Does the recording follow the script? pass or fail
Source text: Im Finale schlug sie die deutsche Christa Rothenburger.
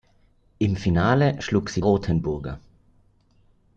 fail